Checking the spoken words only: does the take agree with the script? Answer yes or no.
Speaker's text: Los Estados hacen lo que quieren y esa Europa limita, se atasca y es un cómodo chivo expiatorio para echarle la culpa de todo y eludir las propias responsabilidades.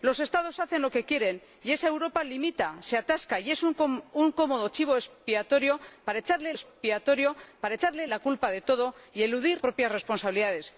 no